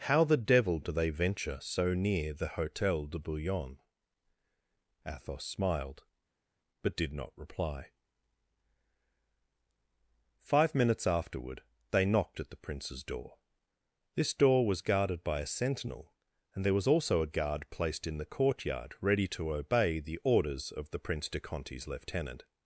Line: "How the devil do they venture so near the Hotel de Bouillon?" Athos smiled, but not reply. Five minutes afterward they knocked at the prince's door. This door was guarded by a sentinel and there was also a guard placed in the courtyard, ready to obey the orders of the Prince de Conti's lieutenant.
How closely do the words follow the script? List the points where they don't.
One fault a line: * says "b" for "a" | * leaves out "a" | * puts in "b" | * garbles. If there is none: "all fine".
* puts in "did"